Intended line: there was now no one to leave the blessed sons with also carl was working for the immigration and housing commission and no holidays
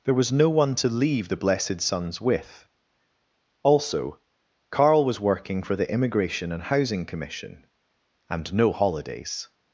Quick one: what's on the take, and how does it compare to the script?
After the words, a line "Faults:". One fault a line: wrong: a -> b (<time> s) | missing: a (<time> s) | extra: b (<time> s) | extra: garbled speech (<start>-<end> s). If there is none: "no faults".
there was no one to leave the blessed sons with also carl was working for the immigration and housing commission and no holidays
Faults:
missing: now (0.3 s)